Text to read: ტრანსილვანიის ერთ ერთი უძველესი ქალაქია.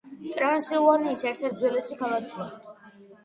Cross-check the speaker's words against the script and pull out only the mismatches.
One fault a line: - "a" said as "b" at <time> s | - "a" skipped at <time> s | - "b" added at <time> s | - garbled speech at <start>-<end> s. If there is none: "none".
- "ერთი" skipped at 1.4 s